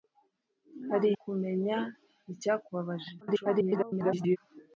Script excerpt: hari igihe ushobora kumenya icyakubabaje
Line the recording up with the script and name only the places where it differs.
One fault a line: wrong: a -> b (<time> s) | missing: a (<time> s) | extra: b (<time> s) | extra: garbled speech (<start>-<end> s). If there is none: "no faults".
missing: igihe ushobora (1.1 s)
extra: garbled speech (3.2-4.4 s)